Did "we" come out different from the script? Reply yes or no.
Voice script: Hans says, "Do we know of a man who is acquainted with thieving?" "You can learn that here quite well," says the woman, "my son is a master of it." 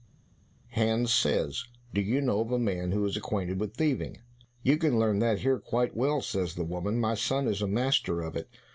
yes